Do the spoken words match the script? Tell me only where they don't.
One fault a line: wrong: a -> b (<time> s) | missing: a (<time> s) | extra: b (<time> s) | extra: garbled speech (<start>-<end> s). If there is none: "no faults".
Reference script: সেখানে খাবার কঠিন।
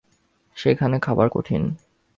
no faults